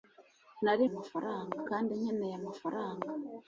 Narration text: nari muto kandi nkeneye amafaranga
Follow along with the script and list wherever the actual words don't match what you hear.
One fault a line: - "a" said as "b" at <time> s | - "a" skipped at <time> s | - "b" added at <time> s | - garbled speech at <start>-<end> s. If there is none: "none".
- "muto" said as "amafaranga" at 0.9 s